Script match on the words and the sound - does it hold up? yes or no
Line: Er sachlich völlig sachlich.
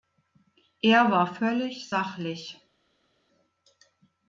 no